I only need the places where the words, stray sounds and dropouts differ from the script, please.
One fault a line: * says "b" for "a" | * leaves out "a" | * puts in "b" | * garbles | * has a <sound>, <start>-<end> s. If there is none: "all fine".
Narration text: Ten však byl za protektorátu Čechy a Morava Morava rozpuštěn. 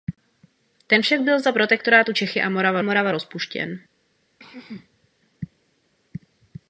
* has a throat clearing, 4.4-5.1 s